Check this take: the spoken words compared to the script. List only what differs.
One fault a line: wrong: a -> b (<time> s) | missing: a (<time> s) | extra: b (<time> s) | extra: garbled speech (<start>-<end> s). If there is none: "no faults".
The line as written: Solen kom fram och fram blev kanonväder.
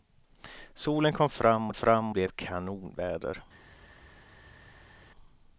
no faults